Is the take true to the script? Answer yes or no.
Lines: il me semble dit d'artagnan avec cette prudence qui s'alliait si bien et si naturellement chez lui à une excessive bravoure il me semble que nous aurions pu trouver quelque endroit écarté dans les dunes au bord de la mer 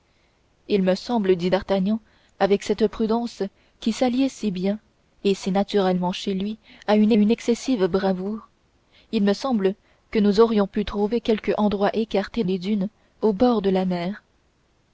no